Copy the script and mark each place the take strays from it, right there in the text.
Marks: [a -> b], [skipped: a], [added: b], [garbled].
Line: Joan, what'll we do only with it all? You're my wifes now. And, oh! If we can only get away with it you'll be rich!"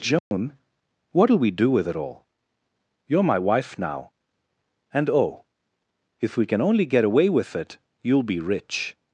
Joan, what'll we do [skipped: only] with it all? You're my [wifes -> wife] now. And, oh! If we can only get away with it you'll be rich!"